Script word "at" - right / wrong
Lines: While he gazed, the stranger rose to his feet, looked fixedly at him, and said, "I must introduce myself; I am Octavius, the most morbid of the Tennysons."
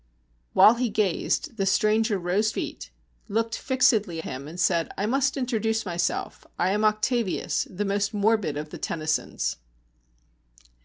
wrong